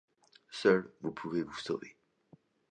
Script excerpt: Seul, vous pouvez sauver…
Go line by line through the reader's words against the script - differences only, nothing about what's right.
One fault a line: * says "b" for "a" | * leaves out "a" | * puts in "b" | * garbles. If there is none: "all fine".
* puts in "vous"